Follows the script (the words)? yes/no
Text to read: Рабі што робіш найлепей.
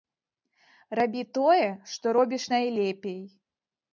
no